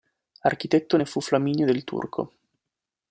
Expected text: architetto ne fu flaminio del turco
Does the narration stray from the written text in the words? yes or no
no